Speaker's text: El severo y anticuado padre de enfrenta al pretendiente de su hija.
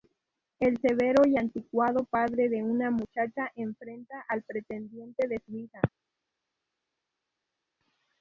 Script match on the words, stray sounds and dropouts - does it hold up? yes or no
no